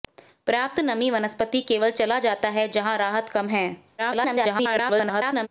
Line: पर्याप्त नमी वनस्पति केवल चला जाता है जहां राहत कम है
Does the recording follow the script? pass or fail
fail